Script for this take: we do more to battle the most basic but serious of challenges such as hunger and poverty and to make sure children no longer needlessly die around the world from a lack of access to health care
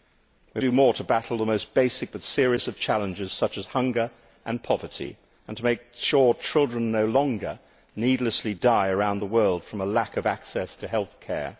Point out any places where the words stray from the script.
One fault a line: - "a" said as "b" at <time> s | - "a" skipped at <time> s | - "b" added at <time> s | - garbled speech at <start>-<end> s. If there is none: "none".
none